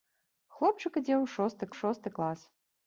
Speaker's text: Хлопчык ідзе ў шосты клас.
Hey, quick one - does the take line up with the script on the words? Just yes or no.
no